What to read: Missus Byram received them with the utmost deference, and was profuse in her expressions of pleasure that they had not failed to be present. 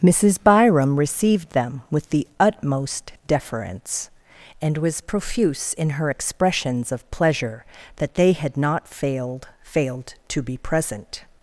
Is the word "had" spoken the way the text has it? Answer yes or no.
yes